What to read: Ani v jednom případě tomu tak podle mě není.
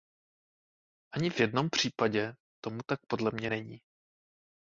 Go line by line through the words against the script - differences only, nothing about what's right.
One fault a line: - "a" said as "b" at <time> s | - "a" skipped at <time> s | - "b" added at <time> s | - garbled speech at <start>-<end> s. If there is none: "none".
none